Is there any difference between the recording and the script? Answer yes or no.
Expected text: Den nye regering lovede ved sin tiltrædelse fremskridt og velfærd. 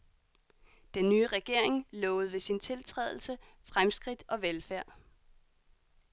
no